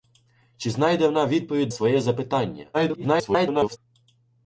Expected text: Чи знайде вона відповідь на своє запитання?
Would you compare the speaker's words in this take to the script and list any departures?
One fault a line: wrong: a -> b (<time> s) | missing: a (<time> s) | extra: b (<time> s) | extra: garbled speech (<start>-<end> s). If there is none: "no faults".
missing: на (1.7 s)
extra: garbled speech (2.7-3.8 s)